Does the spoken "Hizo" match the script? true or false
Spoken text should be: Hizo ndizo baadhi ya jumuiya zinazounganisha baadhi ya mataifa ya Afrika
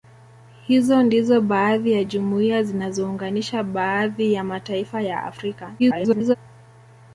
true